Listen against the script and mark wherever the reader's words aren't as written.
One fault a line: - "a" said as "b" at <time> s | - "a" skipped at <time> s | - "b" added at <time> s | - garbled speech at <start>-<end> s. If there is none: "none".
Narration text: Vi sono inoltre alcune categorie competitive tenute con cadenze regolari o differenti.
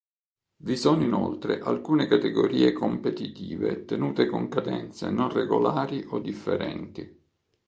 - "non" added at 5.1 s